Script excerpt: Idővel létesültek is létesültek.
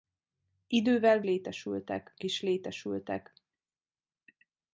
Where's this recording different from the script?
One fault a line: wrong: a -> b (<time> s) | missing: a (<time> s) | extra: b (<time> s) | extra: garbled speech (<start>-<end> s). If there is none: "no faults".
no faults